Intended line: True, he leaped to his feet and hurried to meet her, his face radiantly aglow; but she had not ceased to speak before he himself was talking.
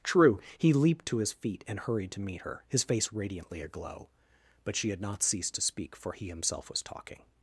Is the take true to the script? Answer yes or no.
no